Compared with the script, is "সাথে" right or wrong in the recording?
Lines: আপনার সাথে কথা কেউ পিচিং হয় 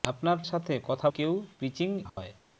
right